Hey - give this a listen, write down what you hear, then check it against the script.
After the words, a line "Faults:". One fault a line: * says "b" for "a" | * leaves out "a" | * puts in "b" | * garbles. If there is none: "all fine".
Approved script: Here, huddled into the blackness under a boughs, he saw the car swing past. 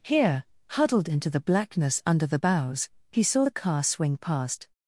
Here, huddled into the blackness under the boughs, he saw the car swing past.
Faults:
* says "the" for "a"